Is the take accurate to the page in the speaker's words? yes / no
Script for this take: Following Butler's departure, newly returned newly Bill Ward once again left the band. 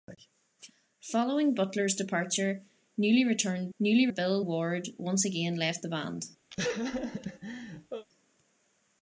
yes